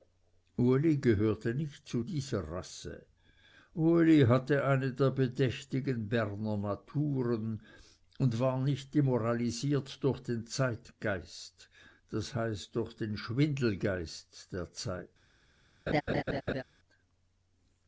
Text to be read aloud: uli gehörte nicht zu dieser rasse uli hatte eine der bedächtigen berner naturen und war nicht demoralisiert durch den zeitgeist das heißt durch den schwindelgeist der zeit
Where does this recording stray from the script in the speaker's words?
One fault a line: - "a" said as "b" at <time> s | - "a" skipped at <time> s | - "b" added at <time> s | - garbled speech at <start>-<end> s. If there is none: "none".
none